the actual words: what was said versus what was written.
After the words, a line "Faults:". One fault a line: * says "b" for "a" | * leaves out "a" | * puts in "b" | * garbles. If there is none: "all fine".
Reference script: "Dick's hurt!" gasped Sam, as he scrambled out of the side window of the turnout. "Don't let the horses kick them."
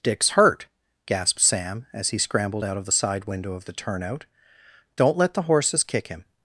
"Dick's hurt!" gasped Sam, as he scrambled out of the side window of the turnout. "Don't let the horses kick him."
Faults:
* says "him" for "them"